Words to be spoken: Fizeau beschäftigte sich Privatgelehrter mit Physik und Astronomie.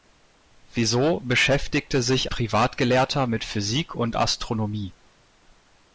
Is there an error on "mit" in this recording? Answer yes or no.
no